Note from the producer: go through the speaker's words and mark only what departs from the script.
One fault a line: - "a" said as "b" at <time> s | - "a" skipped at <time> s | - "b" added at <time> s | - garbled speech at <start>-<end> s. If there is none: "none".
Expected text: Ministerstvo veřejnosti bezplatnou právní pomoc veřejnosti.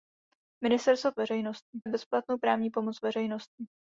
none